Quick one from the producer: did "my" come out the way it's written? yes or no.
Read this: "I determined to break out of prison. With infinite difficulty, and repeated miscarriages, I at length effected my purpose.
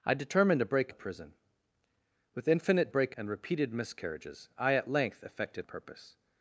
no